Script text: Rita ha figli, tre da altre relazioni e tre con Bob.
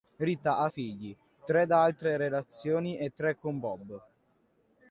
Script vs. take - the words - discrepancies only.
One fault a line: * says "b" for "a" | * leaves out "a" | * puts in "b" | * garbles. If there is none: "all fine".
all fine